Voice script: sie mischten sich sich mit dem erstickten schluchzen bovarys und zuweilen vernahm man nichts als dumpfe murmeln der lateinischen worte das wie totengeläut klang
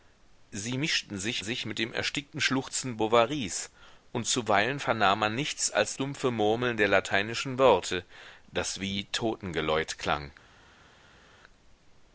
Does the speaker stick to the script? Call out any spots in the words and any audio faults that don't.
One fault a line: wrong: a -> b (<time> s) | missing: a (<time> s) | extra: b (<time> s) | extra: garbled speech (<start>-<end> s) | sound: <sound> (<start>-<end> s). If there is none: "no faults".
no faults